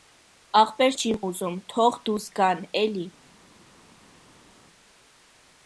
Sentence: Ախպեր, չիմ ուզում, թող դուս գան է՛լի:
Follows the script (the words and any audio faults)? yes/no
yes